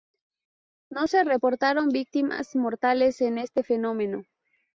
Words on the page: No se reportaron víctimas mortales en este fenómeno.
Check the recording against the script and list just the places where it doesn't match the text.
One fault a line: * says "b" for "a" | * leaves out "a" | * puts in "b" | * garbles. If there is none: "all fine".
all fine